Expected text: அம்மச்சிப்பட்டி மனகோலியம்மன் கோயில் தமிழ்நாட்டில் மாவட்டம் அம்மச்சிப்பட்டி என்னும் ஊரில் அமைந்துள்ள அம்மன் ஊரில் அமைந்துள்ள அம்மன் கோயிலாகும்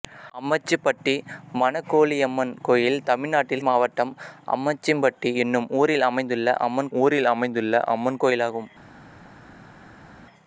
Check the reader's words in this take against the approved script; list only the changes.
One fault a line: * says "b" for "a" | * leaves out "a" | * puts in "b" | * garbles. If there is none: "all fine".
all fine